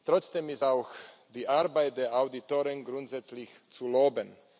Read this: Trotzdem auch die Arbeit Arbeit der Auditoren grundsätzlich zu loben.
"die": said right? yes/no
yes